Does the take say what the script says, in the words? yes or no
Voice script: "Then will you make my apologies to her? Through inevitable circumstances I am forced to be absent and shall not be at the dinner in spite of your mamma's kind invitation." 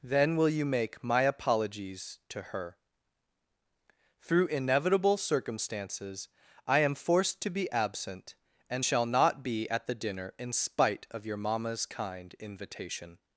yes